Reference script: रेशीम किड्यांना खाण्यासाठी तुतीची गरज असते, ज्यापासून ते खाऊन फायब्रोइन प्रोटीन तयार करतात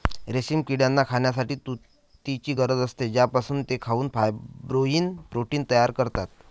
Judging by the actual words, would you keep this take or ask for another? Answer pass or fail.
pass